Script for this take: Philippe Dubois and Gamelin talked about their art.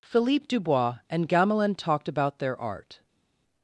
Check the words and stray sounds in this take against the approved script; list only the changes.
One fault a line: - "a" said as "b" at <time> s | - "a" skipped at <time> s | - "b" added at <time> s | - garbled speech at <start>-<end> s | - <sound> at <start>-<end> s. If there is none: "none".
none